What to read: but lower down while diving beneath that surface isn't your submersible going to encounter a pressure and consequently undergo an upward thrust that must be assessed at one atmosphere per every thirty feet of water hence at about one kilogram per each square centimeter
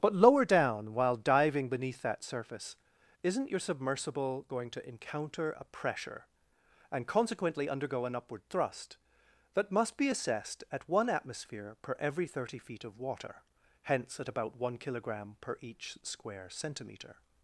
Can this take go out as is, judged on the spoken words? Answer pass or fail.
pass